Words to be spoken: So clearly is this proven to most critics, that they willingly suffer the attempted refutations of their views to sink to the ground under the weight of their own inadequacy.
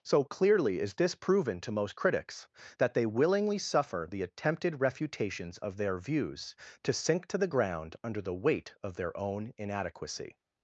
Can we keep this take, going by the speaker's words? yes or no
yes